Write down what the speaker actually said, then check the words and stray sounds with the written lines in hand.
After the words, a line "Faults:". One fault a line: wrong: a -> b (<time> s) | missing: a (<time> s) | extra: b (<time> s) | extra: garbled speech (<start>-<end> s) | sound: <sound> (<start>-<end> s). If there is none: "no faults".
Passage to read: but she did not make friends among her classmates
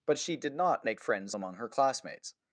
but she did not make friends among her classmates
Faults:
no faults